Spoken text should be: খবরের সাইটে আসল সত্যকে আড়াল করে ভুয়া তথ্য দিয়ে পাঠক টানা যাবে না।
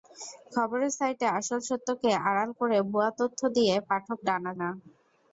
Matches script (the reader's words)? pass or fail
fail